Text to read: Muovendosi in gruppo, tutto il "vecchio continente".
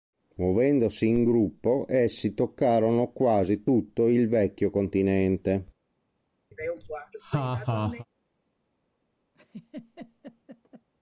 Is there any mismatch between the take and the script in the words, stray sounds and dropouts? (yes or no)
yes